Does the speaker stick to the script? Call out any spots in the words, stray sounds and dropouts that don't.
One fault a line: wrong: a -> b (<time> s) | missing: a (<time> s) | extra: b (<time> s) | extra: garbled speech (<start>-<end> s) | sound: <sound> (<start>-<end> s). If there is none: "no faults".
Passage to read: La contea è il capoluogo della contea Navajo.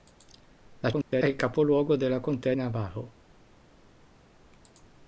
sound: dropout (1.0-1.1 s)